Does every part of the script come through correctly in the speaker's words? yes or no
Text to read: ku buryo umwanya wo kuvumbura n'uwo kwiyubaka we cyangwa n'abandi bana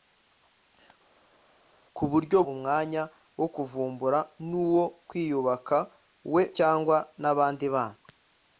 yes